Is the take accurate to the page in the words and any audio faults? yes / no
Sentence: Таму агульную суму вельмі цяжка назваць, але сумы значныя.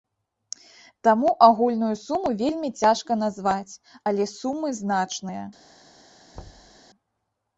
no